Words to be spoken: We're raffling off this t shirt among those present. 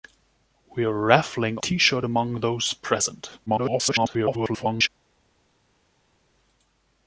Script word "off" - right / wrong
wrong